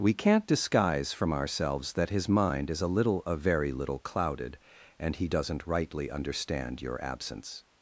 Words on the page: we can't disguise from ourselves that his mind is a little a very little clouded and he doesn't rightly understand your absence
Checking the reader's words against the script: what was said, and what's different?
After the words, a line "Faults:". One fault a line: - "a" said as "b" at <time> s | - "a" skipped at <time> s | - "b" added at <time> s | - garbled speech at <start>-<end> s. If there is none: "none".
we can't disguise from ourselves that his mind is a little a very little clouded and he doesn't rightly understand your absence
Faults:
none